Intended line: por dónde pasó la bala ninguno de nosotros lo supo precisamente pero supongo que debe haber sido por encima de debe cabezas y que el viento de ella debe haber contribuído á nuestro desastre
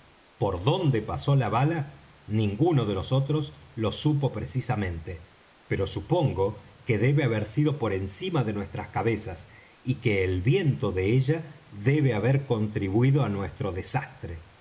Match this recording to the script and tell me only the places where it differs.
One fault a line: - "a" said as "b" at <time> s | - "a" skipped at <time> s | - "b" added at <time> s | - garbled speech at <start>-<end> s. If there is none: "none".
- "debe" said as "nuestras" at 8.5 s